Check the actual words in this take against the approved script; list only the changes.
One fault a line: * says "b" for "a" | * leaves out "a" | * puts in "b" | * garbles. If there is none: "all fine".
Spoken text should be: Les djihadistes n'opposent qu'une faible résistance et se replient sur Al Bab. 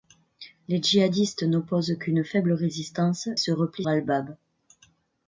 * leaves out "et"
* leaves out "sur"